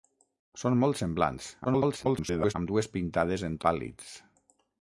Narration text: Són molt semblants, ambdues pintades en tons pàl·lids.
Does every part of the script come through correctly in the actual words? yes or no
no